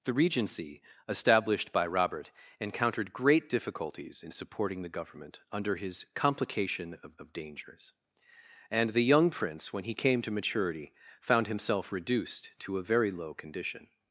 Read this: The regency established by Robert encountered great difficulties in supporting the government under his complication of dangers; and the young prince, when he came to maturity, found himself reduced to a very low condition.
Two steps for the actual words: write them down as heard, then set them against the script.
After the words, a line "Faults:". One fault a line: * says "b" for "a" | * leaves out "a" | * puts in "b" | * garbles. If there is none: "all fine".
The regency established by Robert encountered great difficulties in supporting the government under his complication of of dangers; and the young prince, when he came to maturity, found himself reduced to a very low condition.
Faults:
* puts in "of"